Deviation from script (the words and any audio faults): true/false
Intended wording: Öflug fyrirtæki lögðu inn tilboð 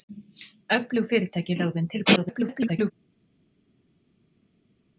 true